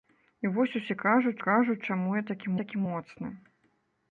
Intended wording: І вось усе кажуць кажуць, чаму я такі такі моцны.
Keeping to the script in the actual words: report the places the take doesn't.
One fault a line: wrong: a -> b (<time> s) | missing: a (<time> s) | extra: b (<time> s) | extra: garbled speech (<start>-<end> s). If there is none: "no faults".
no faults